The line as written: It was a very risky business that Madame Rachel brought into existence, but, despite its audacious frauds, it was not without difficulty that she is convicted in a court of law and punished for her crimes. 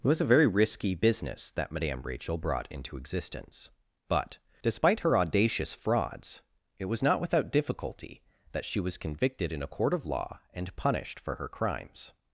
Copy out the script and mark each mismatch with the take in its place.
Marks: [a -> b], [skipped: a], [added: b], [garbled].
It was a very risky business that Madame Rachel brought into existence, but, despite [its -> her] audacious frauds, it was not without difficulty that she [is -> was] convicted in a court of law and punished for her crimes.